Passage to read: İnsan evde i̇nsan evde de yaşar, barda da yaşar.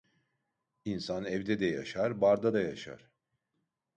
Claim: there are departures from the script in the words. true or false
true